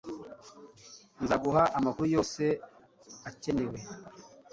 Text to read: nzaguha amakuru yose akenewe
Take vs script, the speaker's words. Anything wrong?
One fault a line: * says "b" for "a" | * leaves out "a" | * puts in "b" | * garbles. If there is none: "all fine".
all fine